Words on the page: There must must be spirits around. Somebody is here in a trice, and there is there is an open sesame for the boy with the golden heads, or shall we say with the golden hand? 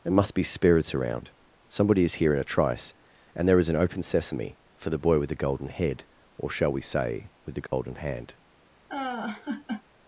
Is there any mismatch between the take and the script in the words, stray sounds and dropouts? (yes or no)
yes